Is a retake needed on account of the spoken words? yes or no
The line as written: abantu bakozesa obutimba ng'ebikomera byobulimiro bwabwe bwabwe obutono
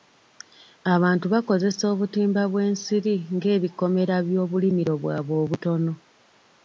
yes